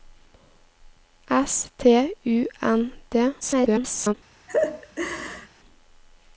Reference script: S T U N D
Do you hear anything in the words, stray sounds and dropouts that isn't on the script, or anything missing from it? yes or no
yes